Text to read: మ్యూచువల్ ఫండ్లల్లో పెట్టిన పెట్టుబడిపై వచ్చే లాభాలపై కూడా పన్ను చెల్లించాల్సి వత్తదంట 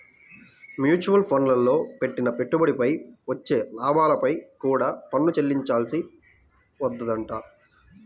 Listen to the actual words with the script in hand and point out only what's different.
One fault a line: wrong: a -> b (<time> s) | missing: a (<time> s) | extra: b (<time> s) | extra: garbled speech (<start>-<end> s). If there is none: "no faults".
no faults